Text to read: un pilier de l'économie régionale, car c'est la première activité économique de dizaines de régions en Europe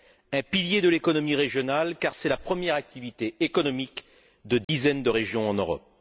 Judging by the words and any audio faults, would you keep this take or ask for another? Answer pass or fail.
fail